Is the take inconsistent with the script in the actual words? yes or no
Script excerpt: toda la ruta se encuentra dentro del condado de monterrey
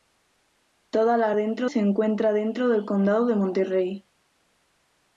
yes